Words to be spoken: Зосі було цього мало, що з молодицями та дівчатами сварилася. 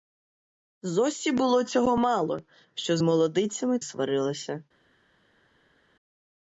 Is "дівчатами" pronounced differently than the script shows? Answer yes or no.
yes